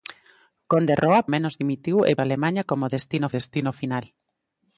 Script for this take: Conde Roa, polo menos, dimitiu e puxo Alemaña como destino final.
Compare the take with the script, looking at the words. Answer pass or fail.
fail